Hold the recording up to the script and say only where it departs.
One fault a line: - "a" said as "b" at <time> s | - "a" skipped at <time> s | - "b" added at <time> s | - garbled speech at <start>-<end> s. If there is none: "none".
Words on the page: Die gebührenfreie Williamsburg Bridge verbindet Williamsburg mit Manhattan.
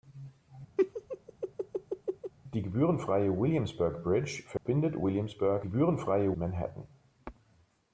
- "mit" said as "gebührenfreie" at 5.6 s